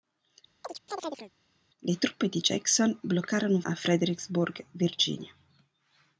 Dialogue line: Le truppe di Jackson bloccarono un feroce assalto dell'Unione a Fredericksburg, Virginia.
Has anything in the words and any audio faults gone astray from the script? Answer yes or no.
yes